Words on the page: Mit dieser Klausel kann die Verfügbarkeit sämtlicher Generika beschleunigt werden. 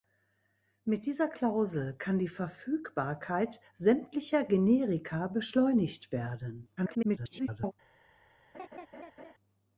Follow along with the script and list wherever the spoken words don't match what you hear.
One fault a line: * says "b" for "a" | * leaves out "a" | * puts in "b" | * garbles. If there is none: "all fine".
* garbles